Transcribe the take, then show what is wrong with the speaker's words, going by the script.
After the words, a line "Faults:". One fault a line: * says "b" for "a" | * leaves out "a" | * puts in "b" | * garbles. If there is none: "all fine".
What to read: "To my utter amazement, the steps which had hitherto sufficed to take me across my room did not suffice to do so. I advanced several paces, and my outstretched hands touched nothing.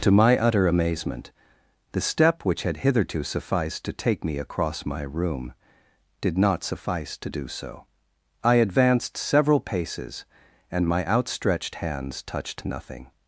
"To my utter amazement, the step which had hitherto sufficed to take me across my room did not suffice to do so. I advanced several paces, and my outstretched hands touched nothing.
Faults:
* says "step" for "steps"